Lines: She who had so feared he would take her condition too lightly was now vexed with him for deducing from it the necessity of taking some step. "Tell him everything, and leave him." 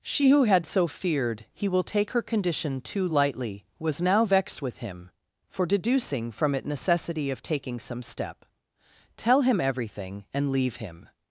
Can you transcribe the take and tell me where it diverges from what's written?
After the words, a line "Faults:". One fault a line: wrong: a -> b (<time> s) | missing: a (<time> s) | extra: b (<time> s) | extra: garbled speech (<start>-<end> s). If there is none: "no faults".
She who had so feared he will take her condition too lightly was now vexed with him for deducing from it necessity of taking some step. "Tell him everything, and leave him."
Faults:
wrong: would -> will (1.7 s)
missing: the (6.7 s)